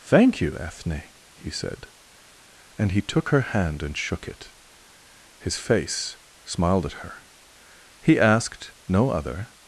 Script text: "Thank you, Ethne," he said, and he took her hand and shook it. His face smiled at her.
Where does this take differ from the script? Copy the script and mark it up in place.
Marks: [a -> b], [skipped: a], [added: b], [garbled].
"Thank you, Ethne," he said, and he took her hand and shook it. His face smiled at her. [added: He asked no other]